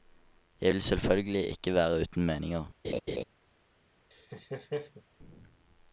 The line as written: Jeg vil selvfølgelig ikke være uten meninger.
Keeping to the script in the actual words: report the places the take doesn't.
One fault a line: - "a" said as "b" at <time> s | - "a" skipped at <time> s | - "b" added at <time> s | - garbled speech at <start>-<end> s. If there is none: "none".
none